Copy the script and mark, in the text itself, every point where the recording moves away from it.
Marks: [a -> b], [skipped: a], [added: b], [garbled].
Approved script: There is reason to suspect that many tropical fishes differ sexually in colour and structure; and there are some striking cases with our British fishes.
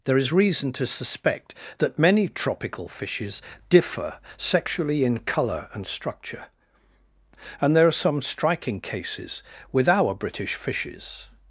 There is reason to suspect that many tropical fishes differ sexually in colour and structure; and there are some striking cases with our British fishes.